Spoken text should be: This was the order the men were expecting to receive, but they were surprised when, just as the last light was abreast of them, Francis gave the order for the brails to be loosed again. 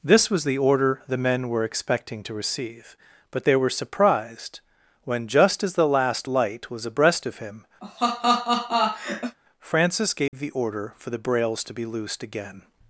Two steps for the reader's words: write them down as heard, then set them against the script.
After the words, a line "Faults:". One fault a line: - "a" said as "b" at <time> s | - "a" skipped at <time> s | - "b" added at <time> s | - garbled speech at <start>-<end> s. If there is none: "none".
This was the order the men were expecting to receive, but they were surprised when, just as the last light was abreast of him, Francis gave the order for the brails to be loosed again.
Faults:
- "them" said as "him" at 7.4 s